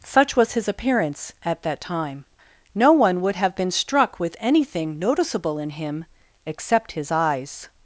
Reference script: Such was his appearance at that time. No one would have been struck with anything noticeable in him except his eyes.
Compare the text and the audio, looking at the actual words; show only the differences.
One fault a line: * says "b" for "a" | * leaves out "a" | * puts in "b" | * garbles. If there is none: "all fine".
all fine